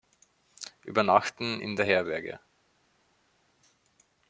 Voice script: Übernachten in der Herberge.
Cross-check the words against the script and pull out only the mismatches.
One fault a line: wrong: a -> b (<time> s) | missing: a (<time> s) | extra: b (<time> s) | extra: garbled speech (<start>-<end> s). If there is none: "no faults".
no faults